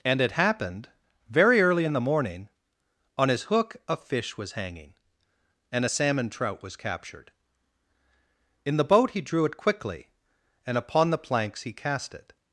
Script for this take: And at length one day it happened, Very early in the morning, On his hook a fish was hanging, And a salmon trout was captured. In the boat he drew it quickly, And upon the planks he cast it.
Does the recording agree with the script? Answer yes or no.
no